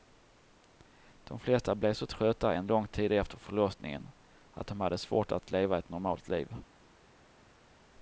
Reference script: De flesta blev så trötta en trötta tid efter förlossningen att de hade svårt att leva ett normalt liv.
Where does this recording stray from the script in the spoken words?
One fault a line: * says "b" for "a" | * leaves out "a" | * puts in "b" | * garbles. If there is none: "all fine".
* says "lång" for "trötta"